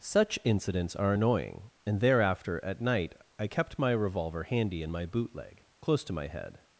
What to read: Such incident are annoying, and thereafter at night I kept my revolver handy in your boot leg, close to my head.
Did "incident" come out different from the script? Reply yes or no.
yes